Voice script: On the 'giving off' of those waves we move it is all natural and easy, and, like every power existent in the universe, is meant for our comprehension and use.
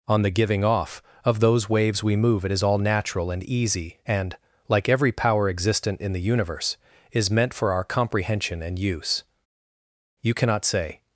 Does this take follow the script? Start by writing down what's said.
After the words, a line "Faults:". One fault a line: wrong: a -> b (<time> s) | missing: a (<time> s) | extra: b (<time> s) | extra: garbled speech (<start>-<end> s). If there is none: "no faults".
On the 'giving off' of those waves we move it is all natural and easy, and, like every power existent in the universe, is meant for our comprehension and use. You cannot say
Faults:
extra: You cannot say (10.2 s)